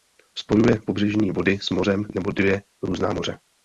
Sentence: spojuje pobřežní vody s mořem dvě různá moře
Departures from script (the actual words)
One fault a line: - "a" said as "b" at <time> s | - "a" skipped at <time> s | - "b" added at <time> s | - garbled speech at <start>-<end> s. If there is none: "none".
- "nebo" added at 2.1 s